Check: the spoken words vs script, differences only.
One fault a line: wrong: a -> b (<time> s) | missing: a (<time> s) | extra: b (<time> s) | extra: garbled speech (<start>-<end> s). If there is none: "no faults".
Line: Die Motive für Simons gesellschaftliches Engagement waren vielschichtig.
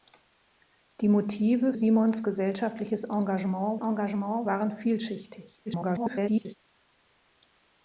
missing: für (1.7 s)
extra: Engagement (3.8 s)
extra: garbled speech (5.7-6.6 s)